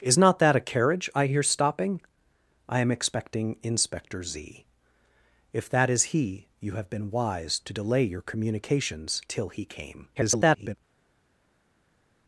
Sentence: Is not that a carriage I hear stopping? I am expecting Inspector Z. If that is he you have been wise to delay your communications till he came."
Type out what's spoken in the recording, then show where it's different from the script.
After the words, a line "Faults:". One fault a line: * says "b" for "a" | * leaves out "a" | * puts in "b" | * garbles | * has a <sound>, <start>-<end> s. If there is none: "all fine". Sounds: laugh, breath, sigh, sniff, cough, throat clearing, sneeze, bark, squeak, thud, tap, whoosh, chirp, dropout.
Is not that a carriage I hear stopping? I am expecting Inspector Z. If that is he you have been wise to delay your communications till he came." [garbled]
Faults:
* garbles